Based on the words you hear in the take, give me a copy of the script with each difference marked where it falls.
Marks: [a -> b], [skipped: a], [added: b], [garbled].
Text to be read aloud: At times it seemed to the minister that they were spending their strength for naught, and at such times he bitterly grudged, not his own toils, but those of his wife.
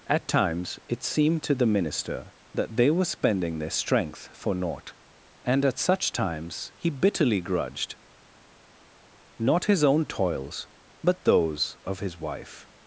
At times it seemed to the minister that they were spending their strength for naught, and at such times he bitterly grudged, not his own toils, but those of his wife.